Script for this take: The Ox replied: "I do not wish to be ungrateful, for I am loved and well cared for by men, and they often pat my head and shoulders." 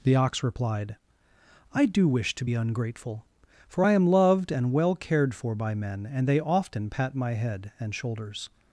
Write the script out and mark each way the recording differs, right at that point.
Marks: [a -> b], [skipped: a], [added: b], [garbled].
The Ox replied: "I do [skipped: not] wish to be ungrateful, for I am loved and well cared for by men, and they often pat my head and shoulders."